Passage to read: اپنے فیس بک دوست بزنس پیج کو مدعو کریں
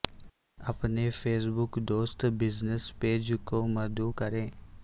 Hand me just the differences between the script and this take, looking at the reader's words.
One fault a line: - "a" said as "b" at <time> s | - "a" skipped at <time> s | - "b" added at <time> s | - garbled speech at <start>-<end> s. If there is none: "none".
none